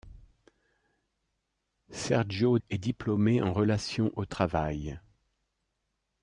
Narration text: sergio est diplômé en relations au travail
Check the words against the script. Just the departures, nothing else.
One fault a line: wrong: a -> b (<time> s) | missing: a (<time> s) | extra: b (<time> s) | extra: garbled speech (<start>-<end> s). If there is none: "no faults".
no faults